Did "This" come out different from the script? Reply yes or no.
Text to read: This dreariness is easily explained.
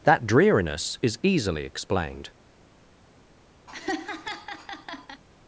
yes